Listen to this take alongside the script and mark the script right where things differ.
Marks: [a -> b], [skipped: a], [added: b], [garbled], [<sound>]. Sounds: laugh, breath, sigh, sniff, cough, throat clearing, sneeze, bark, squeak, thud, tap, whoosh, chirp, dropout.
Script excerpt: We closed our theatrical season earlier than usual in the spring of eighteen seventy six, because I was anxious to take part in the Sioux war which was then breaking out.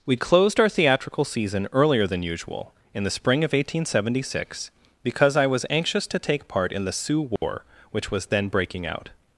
We closed our theatrical season earlier than usual in the spring of eighteen seventy six, because I was anxious to take part in the Sioux war [dropout] which was then breaking out.